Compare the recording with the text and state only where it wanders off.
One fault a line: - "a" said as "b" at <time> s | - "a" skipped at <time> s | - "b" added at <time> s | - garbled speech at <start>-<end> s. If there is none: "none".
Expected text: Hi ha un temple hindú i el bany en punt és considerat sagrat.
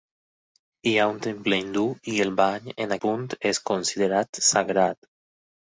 none